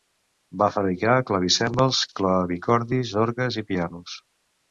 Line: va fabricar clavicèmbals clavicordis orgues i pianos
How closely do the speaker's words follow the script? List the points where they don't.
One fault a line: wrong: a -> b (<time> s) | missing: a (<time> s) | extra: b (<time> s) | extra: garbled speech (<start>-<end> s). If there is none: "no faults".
no faults